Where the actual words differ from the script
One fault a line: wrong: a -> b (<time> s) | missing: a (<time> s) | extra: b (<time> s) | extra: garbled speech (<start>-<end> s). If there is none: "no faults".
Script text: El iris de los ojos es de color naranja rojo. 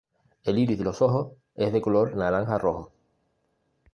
no faults